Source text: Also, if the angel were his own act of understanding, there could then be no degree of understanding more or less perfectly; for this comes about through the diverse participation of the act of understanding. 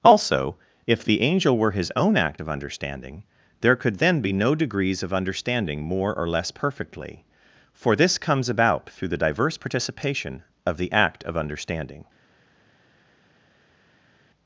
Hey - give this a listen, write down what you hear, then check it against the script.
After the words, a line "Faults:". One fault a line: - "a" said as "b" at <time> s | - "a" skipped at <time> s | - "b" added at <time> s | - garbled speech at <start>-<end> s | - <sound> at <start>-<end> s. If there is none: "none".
Also, if the angel were his own act of understanding, there could then be no degrees of understanding more or less perfectly; for this comes about through the diverse participation of the act of understanding.
Faults:
- "degree" said as "degrees" at 4.5 s